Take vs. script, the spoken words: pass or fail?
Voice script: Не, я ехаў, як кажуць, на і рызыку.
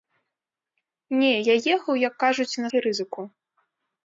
pass